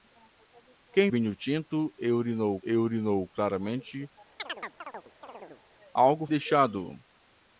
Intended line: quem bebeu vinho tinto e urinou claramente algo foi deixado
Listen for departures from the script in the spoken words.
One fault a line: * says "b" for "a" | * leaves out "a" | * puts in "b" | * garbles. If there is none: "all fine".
* leaves out "bebeu"
* puts in "e urinou"
* leaves out "foi"